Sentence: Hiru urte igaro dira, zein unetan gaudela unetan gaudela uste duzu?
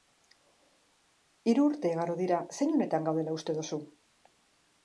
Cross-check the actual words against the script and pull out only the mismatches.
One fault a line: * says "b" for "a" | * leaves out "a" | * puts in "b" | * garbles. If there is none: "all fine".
* leaves out "unetan gaudela"